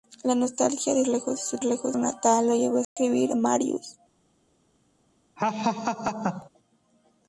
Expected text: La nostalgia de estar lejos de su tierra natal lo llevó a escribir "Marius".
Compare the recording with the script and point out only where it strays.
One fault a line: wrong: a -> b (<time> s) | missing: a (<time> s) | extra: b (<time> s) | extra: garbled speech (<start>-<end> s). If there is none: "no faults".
missing: estar (1.0 s)
wrong: tierra -> lejos (1.6 s)